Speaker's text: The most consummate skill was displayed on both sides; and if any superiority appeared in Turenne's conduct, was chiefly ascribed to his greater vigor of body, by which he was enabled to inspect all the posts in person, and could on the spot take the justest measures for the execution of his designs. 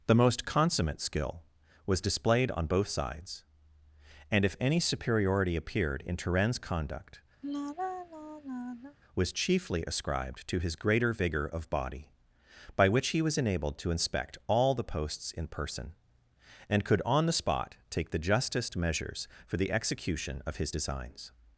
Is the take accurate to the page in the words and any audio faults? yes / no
no